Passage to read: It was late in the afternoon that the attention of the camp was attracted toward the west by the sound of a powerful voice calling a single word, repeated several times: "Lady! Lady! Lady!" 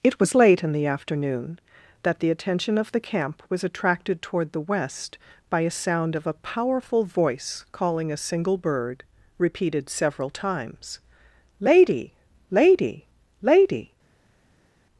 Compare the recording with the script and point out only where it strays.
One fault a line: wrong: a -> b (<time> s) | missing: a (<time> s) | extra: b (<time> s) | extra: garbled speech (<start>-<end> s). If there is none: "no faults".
wrong: the -> a (5.6 s)
wrong: word -> bird (8.6 s)